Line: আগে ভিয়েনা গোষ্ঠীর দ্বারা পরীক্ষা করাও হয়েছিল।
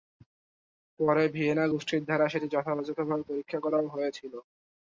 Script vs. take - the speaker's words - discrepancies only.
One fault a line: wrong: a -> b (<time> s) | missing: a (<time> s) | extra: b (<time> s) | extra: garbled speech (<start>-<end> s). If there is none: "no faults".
wrong: আগে -> পরে (1.0 s)
extra: সেটি যথাযথভাবে (2.3 s)